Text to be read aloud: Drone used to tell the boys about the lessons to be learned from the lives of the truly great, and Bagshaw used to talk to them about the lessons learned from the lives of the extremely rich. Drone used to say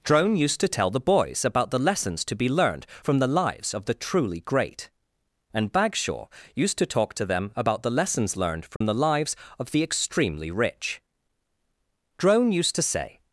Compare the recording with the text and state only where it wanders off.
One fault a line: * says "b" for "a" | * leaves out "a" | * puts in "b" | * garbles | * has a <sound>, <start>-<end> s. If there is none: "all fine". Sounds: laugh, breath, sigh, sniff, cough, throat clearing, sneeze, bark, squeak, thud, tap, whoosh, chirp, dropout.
* has a dropout, 8.8-8.8 s